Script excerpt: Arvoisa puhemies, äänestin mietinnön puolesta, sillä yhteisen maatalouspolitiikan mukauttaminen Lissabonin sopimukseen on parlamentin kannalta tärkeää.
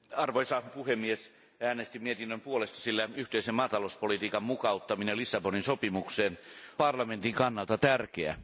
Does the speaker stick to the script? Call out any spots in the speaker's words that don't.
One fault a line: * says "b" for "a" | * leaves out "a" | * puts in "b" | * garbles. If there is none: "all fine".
* leaves out "on"